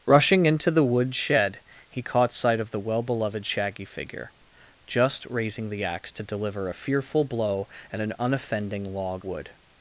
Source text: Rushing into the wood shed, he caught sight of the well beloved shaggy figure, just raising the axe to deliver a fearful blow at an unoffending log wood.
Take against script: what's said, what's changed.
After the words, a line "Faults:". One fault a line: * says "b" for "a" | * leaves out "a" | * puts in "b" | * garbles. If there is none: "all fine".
Rushing into the wood shed, he caught sight of the well beloved shaggy figure, just raising the axe to deliver a fearful blow at an unoffending log wood.
Faults:
all fine